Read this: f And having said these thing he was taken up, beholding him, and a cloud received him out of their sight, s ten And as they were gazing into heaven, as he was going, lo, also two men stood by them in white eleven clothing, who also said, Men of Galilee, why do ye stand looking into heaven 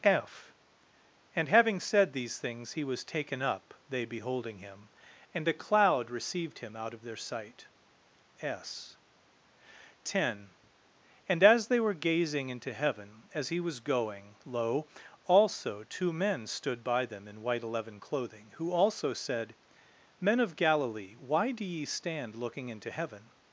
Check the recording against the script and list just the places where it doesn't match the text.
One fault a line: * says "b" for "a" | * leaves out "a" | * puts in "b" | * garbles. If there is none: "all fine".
* says "things" for "thing"
* puts in "they"